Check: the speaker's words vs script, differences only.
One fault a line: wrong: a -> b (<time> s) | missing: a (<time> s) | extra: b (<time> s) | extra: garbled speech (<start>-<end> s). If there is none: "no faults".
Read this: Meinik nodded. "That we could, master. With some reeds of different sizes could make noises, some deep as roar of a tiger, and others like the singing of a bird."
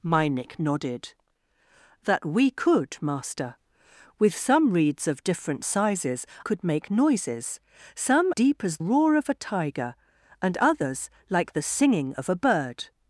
no faults